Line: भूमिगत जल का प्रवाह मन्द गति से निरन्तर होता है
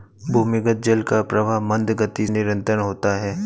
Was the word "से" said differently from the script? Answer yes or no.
yes